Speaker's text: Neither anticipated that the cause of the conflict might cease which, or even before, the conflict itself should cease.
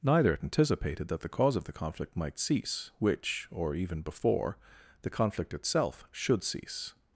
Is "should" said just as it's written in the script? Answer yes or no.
yes